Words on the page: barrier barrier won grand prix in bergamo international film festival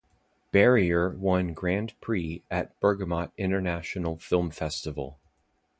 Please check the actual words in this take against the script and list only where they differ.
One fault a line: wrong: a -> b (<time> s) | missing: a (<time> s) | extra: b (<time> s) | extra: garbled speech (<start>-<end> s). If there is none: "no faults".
missing: barrier (1.1 s)
wrong: in -> at (2.5 s)